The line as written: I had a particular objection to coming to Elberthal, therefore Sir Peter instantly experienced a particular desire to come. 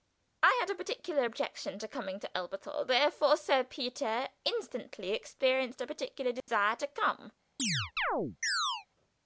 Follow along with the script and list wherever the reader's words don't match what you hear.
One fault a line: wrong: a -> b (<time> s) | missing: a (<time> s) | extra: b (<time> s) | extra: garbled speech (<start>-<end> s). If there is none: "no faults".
no faults